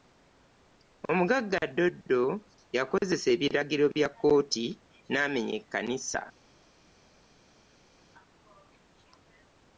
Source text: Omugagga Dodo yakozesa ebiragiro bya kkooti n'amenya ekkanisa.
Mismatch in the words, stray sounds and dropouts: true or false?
false